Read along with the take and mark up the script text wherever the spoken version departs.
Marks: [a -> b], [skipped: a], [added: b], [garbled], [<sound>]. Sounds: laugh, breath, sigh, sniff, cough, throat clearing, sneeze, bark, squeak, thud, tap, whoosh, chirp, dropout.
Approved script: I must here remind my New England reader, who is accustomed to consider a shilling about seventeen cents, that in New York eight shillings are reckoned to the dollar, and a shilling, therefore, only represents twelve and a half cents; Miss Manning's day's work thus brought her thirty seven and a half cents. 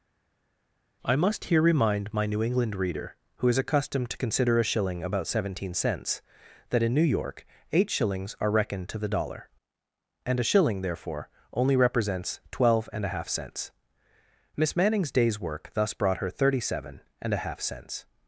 I must here remind my New England reader, who is accustomed to consider a shilling about seventeen cents, that in New York eight shillings are reckoned to the dollar, and a shilling, therefore, only represents twelve and a half cents; Miss Manning's day's work thus brought her thirty seven and a half cents.